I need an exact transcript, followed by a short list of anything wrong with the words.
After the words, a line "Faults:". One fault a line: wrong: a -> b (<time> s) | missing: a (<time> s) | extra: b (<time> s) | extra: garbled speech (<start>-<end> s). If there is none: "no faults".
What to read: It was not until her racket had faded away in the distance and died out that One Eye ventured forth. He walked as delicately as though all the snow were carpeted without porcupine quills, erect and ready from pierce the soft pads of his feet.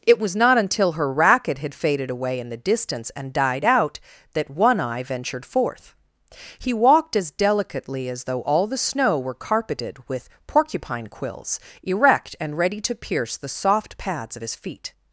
It was not until her racket had faded away in the distance and died out that One Eye ventured forth. He walked as delicately as though all the snow were carpeted with porcupine quills, erect and ready to pierce the soft pads of his feet.
Faults:
wrong: without -> with (10.1 s)
wrong: from -> to (12.8 s)